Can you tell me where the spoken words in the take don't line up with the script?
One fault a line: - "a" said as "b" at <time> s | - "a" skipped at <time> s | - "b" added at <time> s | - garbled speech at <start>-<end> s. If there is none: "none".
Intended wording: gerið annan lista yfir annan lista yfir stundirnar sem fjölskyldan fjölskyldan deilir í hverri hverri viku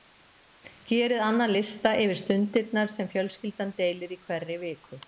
- "annan lista yfir" skipped at 2.2 s
- "fjölskyldan" skipped at 3.8 s
- "hverri" skipped at 4.6 s